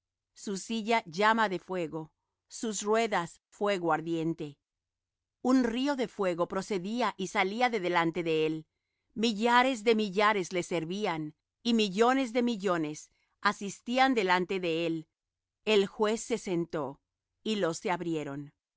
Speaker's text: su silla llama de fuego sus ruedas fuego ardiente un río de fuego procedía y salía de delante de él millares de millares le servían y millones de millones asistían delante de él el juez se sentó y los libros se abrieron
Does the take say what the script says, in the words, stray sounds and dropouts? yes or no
no